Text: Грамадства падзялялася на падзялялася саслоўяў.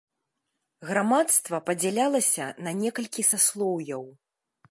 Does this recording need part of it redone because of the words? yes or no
yes